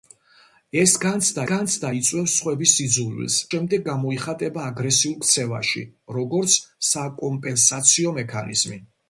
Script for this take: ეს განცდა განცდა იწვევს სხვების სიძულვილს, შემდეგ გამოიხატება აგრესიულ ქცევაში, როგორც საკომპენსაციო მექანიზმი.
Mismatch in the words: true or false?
false